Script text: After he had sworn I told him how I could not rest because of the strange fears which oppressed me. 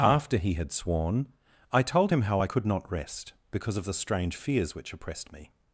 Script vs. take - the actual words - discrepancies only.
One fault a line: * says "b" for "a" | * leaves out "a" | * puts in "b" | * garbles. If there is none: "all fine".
all fine